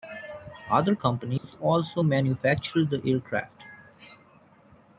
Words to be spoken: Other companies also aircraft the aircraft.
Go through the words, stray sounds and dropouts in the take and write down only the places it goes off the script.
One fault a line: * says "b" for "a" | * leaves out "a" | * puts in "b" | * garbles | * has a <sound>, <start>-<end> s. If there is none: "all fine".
* has a dropout, 1.4-1.4 s
* says "manufactured" for "aircraft"